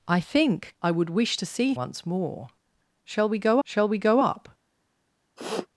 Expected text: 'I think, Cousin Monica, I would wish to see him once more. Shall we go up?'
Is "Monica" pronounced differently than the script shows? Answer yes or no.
yes